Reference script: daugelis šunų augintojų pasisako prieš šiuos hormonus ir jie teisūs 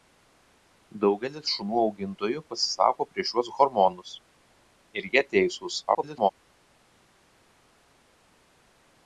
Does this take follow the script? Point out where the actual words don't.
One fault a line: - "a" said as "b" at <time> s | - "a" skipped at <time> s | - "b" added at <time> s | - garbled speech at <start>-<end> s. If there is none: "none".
- garbled speech at 5.9-6.3 s